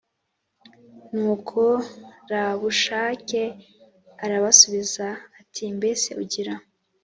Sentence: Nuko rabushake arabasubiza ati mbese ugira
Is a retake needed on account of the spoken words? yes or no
no